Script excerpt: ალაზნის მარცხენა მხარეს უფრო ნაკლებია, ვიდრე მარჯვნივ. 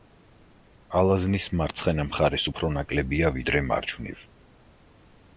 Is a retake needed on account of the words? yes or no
no